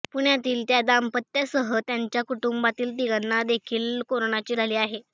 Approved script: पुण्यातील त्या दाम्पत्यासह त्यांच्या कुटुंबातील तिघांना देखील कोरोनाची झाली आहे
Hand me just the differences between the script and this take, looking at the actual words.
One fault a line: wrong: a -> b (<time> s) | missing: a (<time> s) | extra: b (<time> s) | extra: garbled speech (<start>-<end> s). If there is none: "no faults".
no faults